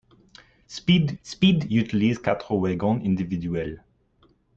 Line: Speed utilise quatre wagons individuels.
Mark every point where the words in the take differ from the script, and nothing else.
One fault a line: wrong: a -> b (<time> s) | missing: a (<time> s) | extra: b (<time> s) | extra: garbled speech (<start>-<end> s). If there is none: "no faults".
extra: speed (1.2 s)